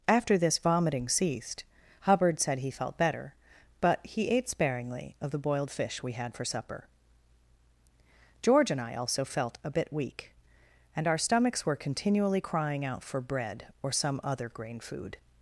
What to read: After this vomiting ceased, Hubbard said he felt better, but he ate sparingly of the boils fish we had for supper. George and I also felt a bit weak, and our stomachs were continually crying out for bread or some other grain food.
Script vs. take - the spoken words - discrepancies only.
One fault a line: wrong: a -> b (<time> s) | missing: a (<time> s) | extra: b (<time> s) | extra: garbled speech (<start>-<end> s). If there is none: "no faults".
wrong: boils -> boiled (5.4 s)